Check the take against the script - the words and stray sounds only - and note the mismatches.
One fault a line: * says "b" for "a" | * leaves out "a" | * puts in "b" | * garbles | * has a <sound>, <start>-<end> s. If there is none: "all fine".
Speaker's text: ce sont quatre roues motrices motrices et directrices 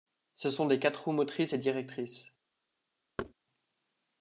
* puts in "des"
* leaves out "motrices"
* has a thud, 3.2-3.3 s